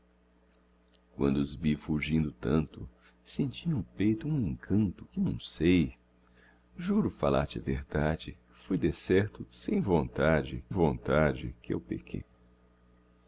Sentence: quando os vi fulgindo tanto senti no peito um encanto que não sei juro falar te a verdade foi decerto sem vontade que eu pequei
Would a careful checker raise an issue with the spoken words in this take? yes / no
yes